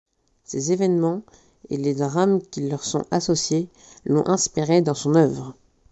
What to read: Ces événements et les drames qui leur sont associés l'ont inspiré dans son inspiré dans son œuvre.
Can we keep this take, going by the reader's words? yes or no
no